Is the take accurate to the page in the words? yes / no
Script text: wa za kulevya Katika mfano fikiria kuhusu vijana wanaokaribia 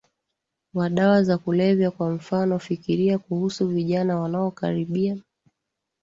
no